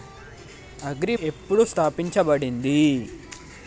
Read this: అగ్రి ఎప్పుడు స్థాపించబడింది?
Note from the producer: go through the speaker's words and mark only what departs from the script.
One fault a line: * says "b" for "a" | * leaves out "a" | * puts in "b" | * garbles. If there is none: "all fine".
all fine